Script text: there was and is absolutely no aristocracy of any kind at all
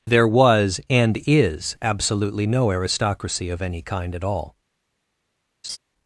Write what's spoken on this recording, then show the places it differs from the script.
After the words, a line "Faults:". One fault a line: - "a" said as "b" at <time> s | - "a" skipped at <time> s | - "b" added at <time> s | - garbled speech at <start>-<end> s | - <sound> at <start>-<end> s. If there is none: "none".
there was and is absolutely no aristocracy of any kind at all
Faults:
- laugh at 5.6-5.8 s